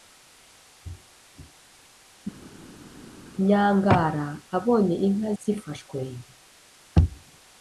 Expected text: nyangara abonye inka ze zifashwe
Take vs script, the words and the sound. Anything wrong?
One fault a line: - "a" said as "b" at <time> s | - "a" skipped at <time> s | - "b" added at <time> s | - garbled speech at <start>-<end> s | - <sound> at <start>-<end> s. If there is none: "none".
- "ze" skipped at 5.3 s